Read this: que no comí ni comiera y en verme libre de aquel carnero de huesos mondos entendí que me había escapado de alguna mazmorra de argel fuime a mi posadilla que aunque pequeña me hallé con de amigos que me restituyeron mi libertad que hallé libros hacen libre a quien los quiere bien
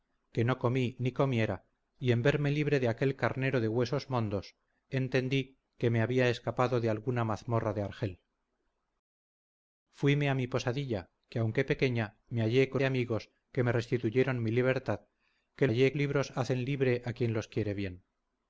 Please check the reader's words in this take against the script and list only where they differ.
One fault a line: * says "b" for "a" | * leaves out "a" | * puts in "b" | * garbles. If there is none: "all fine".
all fine